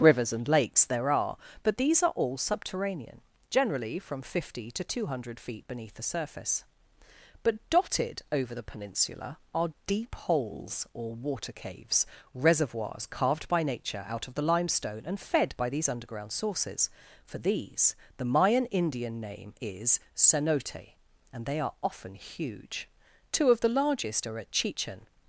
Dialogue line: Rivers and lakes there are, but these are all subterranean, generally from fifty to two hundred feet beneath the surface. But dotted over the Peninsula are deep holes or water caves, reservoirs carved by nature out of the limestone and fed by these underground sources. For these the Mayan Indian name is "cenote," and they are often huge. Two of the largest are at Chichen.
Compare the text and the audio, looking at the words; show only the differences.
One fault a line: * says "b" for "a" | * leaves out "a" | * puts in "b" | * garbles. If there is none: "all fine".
all fine